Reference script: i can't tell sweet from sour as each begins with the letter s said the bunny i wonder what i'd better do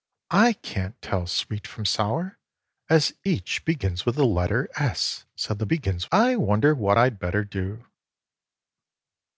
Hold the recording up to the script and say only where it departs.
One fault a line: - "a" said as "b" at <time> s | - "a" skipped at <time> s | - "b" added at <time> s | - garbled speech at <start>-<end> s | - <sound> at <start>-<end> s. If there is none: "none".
- "bunny" said as "begins" at 5.7 s